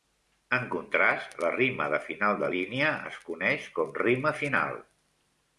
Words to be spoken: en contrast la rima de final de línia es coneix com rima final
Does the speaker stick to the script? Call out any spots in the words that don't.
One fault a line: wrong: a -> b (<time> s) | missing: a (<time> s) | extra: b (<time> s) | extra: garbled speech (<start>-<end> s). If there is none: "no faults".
no faults